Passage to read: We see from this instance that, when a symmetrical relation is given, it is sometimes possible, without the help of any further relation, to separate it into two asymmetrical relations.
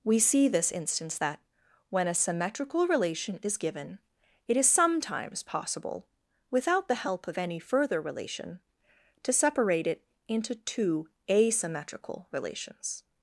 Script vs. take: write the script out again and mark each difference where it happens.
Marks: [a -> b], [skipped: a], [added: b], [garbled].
We see [skipped: from] this instance that, when a symmetrical relation is given, it is sometimes possible, without the help of any further relation, to separate it into two asymmetrical relations.